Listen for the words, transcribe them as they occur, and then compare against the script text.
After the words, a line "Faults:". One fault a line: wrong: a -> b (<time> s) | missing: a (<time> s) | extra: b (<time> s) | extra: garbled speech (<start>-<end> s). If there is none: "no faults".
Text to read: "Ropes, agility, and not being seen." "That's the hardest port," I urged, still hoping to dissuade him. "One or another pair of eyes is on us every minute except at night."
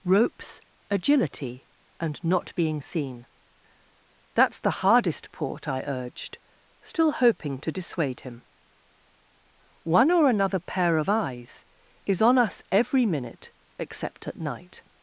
"Ropes, agility, and not being seen." "That's the hardest port," I urged, still hoping to dissuade him. "One or another pair of eyes is on us every minute except at night."
Faults:
no faults